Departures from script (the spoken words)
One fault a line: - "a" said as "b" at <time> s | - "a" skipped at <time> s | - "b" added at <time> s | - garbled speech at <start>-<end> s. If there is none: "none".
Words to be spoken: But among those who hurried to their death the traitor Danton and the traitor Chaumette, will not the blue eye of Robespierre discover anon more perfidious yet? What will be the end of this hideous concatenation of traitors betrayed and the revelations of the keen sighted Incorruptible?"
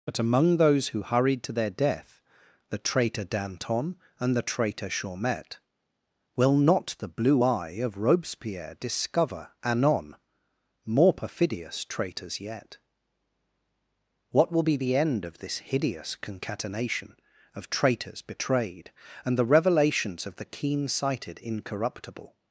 - "traitors" added at 11.8 s